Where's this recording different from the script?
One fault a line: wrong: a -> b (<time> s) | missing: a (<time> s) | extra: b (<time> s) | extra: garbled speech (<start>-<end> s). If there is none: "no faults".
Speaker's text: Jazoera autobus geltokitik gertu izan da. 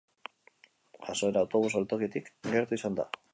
no faults